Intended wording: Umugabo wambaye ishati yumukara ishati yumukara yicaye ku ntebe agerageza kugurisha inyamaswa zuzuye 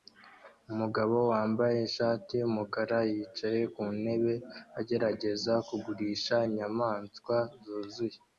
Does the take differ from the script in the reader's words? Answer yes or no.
yes